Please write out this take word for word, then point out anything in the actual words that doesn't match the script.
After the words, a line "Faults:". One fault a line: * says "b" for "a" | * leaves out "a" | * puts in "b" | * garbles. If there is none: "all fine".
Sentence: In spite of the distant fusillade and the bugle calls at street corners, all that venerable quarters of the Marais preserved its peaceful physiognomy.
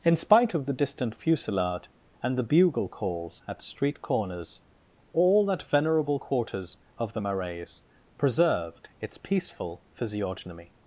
In spite of the distant fusillade and the bugle calls at street corners, all that venerable quarters of the Marais preserved its peaceful physiognomy.
Faults:
all fine